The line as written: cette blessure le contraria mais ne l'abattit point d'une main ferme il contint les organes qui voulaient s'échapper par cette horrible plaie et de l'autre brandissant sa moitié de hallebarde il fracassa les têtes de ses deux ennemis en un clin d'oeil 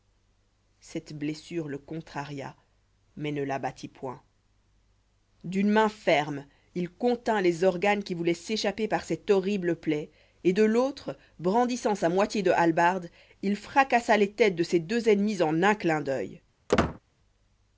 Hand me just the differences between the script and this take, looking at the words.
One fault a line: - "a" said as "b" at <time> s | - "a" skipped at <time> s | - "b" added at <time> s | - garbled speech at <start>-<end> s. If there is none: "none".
none